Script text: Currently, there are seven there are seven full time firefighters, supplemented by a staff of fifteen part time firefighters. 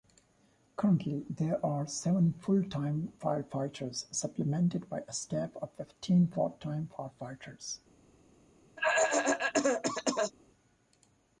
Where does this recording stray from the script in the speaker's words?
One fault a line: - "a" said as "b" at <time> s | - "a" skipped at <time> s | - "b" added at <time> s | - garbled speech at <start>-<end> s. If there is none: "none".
- "there are seven" skipped at 2.3 s